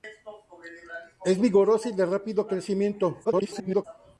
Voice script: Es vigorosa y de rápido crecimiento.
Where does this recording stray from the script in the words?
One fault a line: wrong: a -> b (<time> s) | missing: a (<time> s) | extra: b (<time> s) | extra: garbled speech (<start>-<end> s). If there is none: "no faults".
extra: garbled speech (3.2-3.8 s)